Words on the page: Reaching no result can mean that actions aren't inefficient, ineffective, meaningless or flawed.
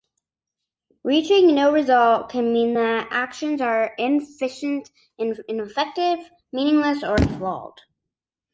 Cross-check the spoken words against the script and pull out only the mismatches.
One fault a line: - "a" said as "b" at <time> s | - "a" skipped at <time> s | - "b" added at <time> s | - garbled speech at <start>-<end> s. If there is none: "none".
- "aren't" said as "are" at 3.6 s